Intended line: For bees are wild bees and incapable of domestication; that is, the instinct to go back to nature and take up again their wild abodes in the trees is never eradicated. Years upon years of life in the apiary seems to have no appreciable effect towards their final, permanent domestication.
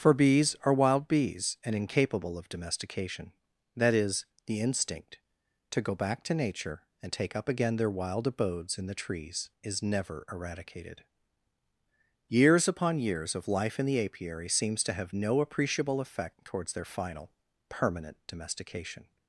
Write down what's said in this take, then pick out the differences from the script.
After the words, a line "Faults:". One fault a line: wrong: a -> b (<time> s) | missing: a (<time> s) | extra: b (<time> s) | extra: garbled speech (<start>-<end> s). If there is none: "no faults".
For bees are wild bees and incapable of domestication; that is, the instinct to go back to nature and take up again their wild abodes in the trees is never eradicated. Years upon years of life in the apiary seems to have no appreciable effect towards their final, permanent domestication.
Faults:
no faults